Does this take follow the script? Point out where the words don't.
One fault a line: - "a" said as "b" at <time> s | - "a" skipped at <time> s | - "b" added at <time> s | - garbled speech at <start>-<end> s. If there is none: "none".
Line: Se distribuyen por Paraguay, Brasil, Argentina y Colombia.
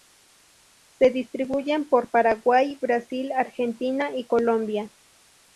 none